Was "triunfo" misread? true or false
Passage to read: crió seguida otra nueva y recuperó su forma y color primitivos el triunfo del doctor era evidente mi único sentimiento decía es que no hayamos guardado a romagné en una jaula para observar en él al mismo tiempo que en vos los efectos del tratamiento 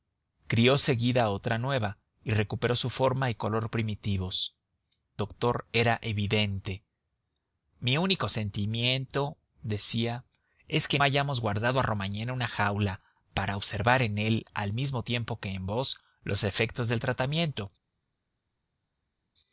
true